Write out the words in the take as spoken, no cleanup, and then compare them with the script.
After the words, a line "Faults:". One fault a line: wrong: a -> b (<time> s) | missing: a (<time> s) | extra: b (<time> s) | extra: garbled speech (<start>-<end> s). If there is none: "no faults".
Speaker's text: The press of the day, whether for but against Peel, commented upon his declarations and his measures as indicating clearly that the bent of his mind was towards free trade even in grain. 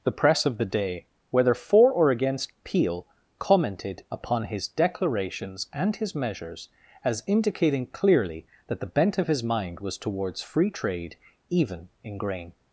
The press of the day, whether for or against Peel, commented upon his declarations and his measures as indicating clearly that the bent of his mind was towards free trade even in grain.
Faults:
wrong: but -> or (1.9 s)